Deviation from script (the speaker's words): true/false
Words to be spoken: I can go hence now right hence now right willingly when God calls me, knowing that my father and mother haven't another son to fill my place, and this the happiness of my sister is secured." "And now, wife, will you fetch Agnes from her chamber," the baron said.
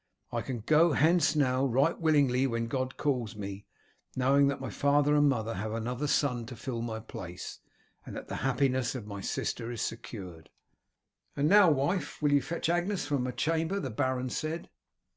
true